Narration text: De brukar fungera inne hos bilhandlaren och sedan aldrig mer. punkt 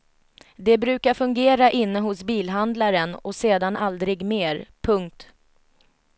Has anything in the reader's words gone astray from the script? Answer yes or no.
no